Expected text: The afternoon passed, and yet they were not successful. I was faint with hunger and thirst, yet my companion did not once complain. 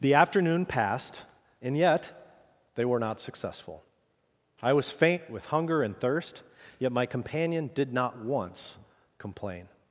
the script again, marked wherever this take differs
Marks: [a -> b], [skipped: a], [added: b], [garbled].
The afternoon passed, and yet they were not successful. I was faint with hunger and thirst, yet my companion did not once complain.